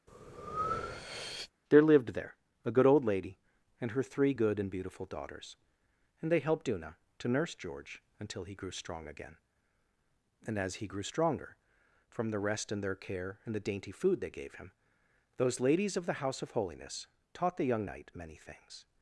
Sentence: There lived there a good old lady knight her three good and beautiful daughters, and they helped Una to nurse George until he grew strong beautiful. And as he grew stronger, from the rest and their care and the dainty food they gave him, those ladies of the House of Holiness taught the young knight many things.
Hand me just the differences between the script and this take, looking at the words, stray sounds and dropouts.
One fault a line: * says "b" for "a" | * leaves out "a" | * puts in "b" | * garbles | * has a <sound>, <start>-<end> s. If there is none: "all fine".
* has a breath, 0.1-1.5 s
* says "and" for "knight"
* says "again" for "beautiful"